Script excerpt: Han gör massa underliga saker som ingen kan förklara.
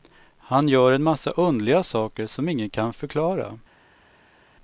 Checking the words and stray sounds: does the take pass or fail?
fail